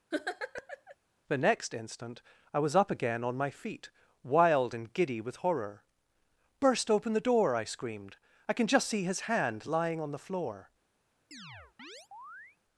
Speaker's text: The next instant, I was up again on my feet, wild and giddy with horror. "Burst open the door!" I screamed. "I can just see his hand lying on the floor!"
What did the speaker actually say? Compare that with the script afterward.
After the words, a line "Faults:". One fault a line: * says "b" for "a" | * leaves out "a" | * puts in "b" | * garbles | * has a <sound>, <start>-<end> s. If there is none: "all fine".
The next instant, I was up again on my feet, wild and giddy with horror. "Burst open the door!" I screamed. "I can just see his hand lying on the floor!"
Faults:
* has a laugh, 0.1-1.0 s
* has a chirp, 11.3-12.6 s